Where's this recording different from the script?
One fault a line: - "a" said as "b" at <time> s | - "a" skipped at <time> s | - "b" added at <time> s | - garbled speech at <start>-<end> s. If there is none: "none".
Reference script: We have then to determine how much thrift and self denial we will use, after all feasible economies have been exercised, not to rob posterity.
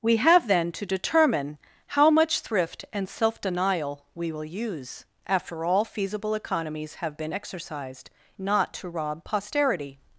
none